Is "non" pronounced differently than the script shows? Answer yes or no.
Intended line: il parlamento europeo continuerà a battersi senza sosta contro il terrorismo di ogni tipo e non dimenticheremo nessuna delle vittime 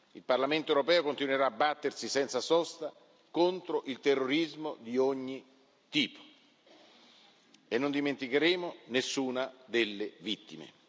no